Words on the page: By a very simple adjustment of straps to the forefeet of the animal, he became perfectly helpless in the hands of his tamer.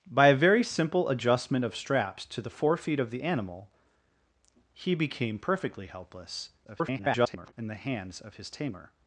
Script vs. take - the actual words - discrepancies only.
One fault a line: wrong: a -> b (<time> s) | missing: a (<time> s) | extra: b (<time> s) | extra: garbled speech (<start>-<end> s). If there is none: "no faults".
extra: garbled speech (6.6-7.5 s)